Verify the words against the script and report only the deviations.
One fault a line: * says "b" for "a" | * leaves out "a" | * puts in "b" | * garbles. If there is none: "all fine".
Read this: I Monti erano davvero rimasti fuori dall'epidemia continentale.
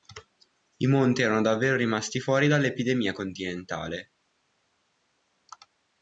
all fine